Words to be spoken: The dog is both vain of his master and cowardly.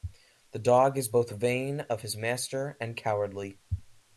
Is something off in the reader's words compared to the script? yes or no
no